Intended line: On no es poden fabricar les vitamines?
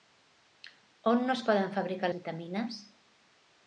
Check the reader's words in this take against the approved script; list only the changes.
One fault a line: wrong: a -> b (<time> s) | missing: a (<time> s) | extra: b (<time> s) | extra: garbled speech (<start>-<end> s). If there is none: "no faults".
missing: les (2.1 s)